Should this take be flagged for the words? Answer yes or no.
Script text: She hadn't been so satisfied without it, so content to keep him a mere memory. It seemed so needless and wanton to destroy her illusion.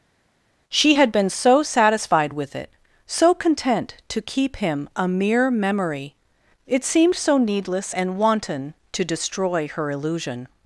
yes